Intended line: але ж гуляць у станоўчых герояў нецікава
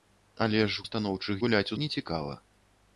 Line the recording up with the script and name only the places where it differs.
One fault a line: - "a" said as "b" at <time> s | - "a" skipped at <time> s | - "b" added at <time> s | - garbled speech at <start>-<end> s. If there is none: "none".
- "гуляць" skipped at 0.8 s
- "герояў" said as "гуляць" at 1.4 s